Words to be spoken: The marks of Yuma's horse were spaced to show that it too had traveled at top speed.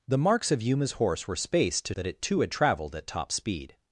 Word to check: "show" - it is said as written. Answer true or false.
false